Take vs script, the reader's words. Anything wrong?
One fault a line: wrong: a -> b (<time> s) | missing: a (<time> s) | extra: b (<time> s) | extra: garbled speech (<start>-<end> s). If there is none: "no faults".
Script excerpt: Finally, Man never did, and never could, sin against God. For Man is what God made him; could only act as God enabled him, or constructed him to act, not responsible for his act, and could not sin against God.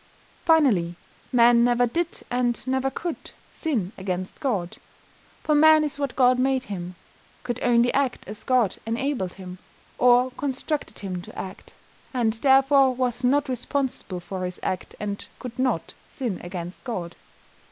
extra: and therefore was (12.2 s)